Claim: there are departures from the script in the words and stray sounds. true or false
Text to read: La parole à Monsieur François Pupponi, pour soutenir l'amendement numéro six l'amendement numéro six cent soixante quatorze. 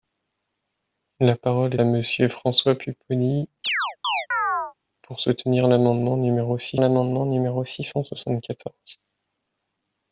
true